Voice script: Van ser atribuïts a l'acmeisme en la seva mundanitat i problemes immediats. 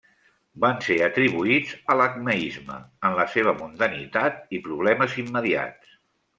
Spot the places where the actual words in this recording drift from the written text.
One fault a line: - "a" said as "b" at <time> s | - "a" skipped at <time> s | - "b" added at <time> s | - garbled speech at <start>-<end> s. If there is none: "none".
none